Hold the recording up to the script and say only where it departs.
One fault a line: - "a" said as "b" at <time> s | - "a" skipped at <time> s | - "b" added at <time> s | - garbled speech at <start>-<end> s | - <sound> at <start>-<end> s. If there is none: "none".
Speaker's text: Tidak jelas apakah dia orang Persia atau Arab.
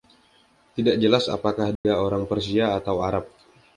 - dropout at 1.8-1.8 s